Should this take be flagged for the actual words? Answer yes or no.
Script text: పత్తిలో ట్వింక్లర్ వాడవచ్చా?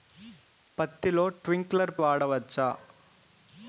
no